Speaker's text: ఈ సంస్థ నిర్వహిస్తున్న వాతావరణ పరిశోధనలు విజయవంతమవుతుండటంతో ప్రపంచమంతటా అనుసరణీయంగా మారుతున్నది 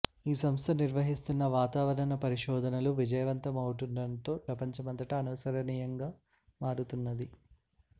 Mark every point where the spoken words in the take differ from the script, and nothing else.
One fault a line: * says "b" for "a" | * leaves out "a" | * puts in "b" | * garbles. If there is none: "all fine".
all fine